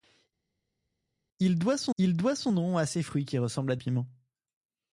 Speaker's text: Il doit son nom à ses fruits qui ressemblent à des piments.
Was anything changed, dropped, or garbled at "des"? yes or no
yes